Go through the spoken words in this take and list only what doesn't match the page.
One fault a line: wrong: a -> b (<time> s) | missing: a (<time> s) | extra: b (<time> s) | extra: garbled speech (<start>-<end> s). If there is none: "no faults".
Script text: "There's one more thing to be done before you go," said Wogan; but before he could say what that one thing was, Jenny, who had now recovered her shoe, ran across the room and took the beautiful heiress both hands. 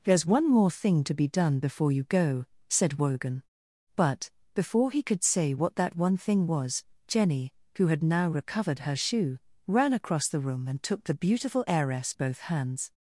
no faults